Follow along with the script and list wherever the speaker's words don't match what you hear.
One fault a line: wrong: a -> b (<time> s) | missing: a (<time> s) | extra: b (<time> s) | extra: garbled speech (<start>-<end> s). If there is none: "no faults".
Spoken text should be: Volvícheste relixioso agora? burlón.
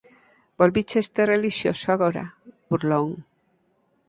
no faults